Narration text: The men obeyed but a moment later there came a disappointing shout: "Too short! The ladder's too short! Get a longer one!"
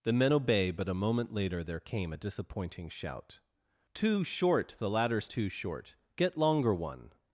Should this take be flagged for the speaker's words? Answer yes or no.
yes